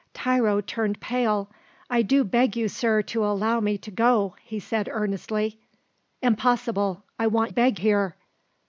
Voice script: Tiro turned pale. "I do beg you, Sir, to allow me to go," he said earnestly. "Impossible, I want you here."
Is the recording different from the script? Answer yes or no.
yes